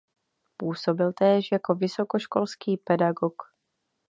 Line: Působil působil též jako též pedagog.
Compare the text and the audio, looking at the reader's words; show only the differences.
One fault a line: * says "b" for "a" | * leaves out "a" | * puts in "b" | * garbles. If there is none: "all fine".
* leaves out "působil"
* says "vysokoškolský" for "též"